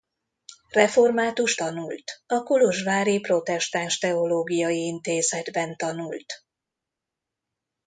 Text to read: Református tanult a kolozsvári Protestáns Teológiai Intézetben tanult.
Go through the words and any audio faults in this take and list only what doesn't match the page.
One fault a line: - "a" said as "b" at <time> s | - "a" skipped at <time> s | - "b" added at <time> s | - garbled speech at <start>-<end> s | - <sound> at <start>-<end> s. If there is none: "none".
none